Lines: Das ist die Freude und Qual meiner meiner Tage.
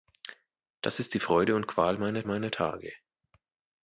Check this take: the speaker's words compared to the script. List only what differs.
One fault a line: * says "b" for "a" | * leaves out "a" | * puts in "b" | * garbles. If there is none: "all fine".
all fine